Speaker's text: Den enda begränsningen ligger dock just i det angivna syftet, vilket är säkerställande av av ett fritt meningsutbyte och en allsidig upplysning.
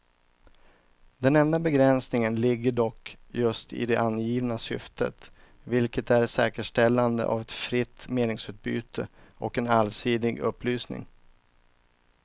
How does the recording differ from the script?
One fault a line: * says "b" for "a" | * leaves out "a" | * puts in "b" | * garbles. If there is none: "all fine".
* leaves out "av"